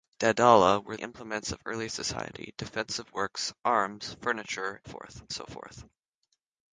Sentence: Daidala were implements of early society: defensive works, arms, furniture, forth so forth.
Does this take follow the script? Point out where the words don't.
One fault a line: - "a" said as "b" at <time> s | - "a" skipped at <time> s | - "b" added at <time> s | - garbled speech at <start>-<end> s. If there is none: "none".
none